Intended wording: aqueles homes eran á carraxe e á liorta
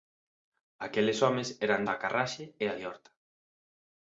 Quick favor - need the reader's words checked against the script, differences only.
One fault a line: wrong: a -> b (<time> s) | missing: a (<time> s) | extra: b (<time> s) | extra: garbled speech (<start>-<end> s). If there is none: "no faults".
no faults